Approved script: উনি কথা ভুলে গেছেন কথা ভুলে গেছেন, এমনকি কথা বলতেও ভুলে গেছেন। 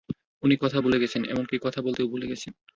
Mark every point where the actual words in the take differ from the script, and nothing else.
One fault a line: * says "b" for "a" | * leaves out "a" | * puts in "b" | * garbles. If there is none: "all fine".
* leaves out "কথা ভুলে গেছেন"